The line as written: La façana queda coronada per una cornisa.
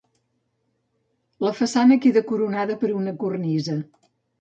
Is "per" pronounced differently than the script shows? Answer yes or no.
no